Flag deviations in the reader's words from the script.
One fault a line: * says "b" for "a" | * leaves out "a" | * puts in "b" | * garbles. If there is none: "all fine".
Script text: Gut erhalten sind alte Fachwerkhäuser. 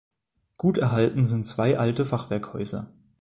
* puts in "zwei"